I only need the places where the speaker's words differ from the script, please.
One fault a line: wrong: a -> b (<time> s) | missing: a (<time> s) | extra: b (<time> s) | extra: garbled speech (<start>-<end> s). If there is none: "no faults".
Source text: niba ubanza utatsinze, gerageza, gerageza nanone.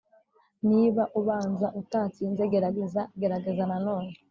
no faults